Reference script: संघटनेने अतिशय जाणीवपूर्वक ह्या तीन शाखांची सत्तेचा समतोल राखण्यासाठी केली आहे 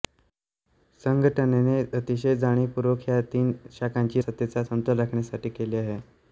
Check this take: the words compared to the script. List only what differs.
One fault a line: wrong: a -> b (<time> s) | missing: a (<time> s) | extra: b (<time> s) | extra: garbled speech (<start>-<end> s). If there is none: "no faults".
no faults